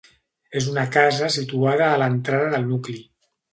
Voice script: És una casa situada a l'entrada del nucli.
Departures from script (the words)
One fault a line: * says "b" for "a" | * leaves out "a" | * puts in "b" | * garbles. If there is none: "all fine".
all fine